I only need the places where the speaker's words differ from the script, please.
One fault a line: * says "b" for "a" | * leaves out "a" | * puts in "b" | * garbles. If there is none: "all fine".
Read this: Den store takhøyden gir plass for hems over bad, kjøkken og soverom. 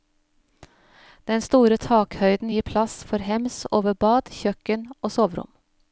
all fine